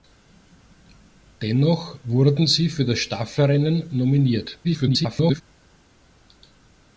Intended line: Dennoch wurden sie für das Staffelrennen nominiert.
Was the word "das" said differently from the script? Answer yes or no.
no